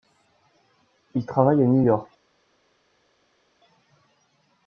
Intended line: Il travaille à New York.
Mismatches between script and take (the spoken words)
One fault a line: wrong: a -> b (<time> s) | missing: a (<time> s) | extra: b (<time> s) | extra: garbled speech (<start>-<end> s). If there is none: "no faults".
no faults